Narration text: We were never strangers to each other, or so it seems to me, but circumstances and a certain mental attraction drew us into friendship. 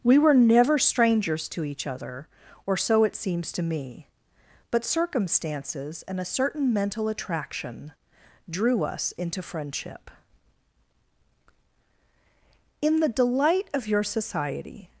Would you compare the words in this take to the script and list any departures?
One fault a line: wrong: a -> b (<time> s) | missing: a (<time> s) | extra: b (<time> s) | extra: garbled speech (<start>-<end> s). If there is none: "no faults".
extra: In the delight of your society (12.8 s)